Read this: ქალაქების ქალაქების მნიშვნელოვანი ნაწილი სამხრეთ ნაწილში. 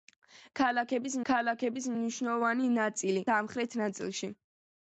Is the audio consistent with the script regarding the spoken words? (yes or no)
yes